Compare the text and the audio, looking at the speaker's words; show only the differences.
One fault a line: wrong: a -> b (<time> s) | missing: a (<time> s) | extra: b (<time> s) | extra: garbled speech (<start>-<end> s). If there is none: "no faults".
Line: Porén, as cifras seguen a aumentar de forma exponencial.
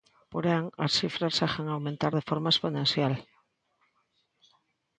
no faults